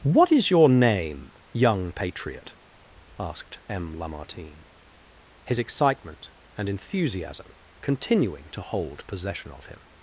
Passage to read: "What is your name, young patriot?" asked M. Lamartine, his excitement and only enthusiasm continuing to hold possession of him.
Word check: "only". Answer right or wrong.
wrong